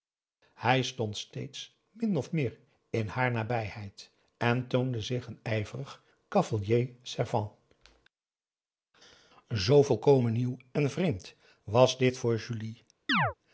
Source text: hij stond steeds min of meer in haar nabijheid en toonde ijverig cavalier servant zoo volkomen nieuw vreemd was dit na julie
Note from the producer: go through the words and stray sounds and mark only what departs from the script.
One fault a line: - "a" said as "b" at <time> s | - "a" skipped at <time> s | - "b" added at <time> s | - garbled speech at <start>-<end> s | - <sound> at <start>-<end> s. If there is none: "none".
- "zich een" added at 5.0 s
- "en" added at 10.7 s
- "na" said as "voor" at 12.2 s
- chirp at 13.1-13.3 s